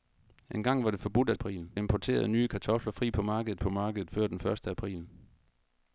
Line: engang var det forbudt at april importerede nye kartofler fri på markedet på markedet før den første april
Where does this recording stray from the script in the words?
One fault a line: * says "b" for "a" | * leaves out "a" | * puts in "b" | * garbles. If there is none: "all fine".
all fine